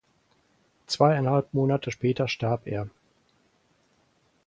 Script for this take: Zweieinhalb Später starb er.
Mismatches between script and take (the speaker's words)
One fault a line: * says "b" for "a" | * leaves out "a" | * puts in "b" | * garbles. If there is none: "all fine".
* puts in "Monate"